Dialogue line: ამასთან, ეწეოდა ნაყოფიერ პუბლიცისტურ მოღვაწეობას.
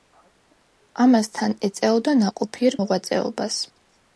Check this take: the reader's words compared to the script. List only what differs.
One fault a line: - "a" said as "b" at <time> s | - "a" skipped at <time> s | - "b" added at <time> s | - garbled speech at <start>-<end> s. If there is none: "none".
- "პუბლიცისტურ" skipped at 2.8 s